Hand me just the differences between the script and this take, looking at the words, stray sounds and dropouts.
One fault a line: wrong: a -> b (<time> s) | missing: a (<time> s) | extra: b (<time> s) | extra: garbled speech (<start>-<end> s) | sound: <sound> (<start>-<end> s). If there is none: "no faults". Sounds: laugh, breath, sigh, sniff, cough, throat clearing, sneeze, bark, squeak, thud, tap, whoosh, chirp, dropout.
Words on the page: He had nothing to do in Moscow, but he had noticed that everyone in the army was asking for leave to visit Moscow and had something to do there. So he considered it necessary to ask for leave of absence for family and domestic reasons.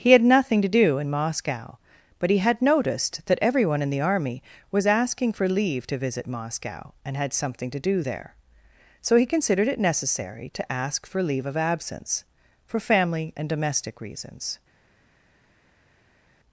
no faults